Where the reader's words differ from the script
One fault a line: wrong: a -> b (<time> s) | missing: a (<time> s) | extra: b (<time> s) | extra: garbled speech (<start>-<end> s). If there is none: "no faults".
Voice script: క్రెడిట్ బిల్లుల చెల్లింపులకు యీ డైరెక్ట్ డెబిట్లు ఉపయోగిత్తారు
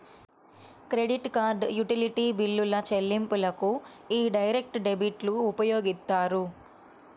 extra: కార్డ్ యుటిలిటీ (1.4 s)